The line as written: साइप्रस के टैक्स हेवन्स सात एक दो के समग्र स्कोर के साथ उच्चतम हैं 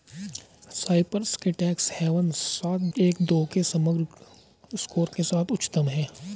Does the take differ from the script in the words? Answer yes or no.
no